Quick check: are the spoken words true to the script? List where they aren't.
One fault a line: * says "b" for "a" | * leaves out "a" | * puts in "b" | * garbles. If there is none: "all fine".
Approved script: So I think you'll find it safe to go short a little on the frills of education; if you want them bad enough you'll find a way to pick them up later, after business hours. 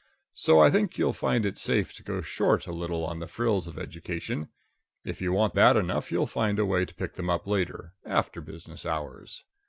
* leaves out "them"